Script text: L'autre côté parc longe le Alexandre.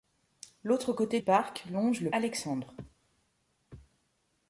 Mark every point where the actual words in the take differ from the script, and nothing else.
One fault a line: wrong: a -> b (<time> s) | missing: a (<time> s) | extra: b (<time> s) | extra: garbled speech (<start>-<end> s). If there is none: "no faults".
no faults